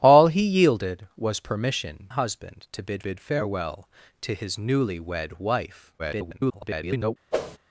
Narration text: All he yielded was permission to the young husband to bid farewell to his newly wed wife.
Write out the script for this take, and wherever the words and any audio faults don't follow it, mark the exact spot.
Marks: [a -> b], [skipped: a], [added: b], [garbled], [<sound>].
All he yielded was permission [skipped: to the young] husband to bid [added: bid] farewell to his newly wed wife. [garbled] [whoosh]